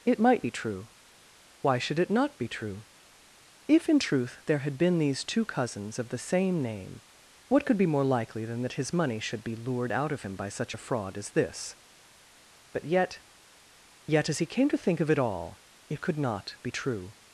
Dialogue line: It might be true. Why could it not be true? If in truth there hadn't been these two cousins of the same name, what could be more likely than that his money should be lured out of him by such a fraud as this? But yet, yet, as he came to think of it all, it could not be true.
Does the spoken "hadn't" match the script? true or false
false